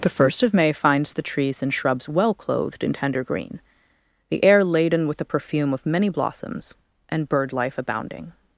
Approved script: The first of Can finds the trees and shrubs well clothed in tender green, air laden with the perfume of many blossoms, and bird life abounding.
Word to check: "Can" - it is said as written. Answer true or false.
false